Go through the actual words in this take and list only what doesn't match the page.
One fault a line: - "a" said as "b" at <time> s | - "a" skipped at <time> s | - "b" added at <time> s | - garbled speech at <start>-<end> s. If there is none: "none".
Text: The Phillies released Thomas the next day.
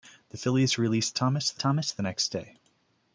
- "Thomas the" added at 1.6 s